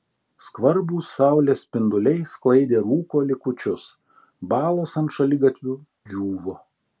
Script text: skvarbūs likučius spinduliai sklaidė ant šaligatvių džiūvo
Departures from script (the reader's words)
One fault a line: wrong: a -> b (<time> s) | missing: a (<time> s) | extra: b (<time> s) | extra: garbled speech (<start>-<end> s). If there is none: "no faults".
wrong: likučius -> saulės (1.2 s)
extra: rūko likučius balos (2.9 s)